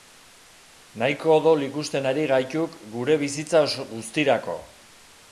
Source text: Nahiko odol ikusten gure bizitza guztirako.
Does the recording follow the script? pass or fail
fail